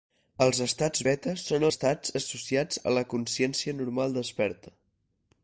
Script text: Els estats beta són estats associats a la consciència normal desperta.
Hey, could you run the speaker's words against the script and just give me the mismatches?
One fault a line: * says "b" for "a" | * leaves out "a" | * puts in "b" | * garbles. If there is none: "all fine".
all fine